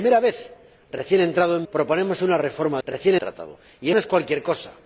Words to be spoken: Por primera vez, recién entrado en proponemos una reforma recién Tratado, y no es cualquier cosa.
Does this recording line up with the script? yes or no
yes